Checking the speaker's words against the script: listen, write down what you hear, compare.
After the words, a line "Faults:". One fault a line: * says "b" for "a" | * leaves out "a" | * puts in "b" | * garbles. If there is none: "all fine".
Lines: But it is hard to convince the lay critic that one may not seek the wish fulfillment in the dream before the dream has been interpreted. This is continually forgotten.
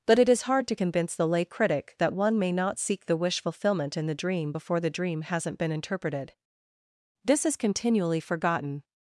But it is hard to convince the lay critic that one may not seek the wish fulfillment in the dream before the dream hasn't been interpreted. This is continually forgotten.
Faults:
* says "hasn't" for "has"